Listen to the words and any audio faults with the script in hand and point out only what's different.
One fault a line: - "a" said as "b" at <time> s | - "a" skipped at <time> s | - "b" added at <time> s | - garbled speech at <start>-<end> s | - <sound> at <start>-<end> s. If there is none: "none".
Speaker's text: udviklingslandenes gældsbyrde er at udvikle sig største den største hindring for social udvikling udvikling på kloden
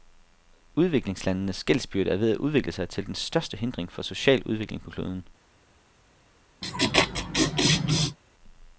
- "ved" added at 2.2 s
- "største" said as "til" at 2.9 s
- "udvikling" skipped at 4.8 s
- laugh at 6.6-8.2 s